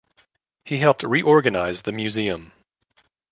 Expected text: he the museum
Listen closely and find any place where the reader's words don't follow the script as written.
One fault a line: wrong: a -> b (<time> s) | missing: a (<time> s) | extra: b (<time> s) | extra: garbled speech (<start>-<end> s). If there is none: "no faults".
extra: helped reorganize (0.8 s)